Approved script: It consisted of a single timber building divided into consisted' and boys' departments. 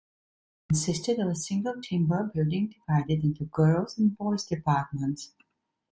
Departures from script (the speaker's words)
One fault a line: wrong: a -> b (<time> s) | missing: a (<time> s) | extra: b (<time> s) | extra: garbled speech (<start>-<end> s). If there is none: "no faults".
wrong: consisted -> girls (3.4 s)